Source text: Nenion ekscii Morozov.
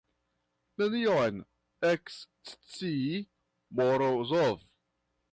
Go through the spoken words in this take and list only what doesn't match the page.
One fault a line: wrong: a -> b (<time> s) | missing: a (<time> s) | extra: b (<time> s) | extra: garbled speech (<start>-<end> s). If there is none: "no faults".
no faults